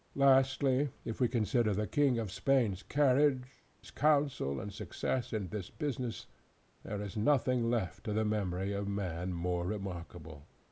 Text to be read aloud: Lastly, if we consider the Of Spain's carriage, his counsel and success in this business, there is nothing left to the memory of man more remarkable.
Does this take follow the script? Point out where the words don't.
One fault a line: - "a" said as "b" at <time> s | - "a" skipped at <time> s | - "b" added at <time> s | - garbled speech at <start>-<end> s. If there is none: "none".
- "King" added at 1.9 s